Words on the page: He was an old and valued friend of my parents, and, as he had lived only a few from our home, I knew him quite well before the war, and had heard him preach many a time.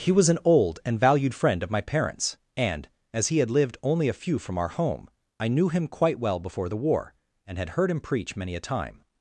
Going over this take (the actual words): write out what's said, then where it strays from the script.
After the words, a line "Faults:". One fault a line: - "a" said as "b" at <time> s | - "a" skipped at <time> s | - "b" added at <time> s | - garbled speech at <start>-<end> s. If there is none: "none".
He was an old and valued friend of my parents, and, as he had lived only a few from our home, I knew him quite well before the war, and had heard him preach many a time.
Faults:
none